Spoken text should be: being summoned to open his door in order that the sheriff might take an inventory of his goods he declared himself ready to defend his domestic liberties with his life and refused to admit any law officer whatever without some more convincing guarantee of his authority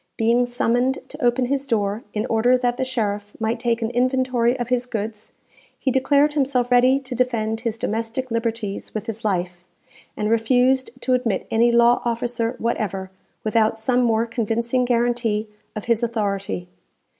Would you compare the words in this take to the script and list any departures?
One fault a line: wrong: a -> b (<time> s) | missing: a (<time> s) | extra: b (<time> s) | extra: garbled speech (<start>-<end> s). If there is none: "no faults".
no faults